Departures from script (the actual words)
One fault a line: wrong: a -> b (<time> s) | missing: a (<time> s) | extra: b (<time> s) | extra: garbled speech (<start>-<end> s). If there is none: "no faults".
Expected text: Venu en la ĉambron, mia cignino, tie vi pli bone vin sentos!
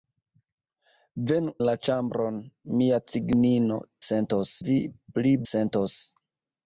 missing: en (1.5 s)
wrong: tie -> sentos (4.1 s)
missing: bone vin (5.3 s)